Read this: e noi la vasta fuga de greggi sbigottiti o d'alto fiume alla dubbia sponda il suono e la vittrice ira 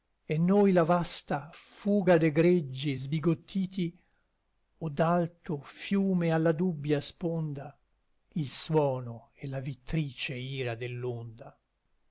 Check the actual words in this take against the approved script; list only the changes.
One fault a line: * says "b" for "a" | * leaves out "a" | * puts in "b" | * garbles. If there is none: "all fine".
all fine